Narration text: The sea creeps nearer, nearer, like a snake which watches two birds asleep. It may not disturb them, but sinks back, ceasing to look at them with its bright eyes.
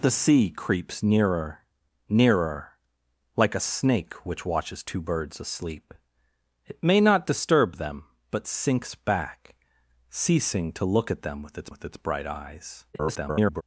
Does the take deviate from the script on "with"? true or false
false